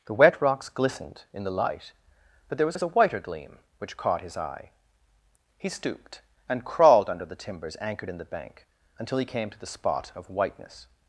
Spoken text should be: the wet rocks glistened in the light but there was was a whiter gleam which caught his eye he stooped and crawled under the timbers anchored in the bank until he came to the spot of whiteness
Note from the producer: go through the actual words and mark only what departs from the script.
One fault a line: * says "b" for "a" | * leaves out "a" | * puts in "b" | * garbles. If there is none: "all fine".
all fine